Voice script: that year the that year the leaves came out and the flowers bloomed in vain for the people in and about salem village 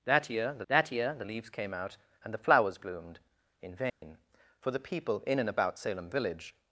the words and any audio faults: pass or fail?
fail